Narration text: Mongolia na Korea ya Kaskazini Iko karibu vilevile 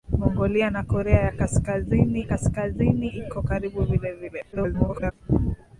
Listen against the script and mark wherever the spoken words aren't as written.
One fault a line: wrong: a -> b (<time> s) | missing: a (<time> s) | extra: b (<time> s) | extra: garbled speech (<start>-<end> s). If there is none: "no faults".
extra: Kaskazini (2.2 s)
extra: garbled speech (4.5-5.1 s)